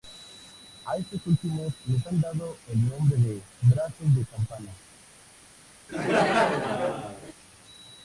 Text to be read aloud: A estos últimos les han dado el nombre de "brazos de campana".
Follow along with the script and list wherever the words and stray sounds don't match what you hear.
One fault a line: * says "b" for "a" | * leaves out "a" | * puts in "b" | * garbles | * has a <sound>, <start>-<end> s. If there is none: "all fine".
* has a laugh, 5.9-7.3 s